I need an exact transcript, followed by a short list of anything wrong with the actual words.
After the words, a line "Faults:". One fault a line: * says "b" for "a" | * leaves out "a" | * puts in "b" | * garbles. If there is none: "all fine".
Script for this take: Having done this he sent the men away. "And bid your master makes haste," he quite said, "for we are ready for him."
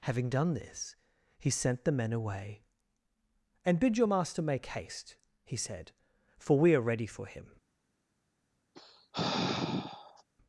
Having done this he sent the men away. "And bid your master make haste," he said, "for we are ready for him."
Faults:
* says "make" for "makes"
* leaves out "quite"